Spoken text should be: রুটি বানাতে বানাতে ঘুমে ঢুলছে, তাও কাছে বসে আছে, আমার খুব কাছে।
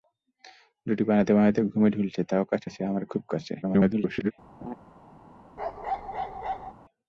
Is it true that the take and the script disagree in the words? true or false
true